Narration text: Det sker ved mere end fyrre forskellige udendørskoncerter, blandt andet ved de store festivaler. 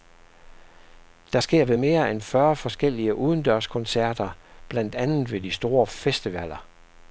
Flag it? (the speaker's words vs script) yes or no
no